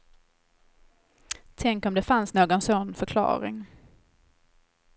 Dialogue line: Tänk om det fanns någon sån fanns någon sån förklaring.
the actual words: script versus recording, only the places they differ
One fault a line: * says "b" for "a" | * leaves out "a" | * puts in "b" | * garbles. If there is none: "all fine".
* leaves out "fanns någon sån"